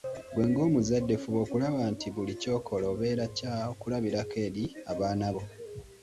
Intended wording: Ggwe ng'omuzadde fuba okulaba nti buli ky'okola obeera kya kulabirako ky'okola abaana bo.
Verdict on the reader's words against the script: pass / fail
fail